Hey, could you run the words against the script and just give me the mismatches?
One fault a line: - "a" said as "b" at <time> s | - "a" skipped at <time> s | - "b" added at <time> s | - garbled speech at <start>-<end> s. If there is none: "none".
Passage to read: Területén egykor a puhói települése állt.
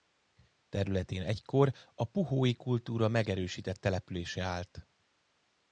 - "kultúra megerősített" added at 2.5 s